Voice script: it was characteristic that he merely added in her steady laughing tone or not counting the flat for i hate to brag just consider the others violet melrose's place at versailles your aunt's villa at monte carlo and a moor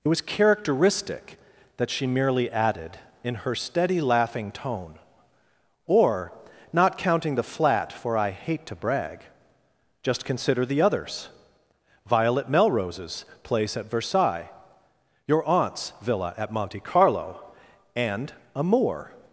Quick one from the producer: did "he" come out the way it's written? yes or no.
no